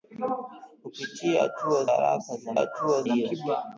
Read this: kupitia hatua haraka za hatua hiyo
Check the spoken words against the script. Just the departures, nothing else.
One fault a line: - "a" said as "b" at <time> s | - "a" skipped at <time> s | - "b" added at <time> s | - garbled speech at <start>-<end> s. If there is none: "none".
none